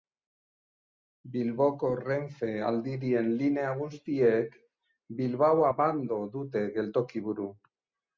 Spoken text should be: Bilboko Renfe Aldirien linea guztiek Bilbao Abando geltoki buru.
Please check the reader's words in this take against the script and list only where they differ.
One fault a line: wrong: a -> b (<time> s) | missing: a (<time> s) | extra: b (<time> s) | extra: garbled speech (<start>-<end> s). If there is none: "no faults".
extra: dute (6.4 s)